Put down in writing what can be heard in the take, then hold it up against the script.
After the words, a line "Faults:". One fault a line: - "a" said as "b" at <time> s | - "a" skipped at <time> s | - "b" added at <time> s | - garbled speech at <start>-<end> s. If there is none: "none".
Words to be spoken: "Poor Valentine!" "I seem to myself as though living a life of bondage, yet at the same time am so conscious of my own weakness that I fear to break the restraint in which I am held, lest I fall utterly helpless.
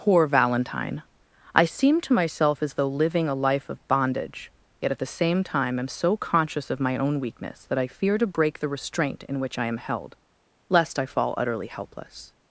"Poor Valentine!" "I seem to myself as though living a life of bondage, yet at the same time am so conscious of my own weakness that I fear to break the restraint in which I am held, lest I fall utterly helpless.
Faults:
none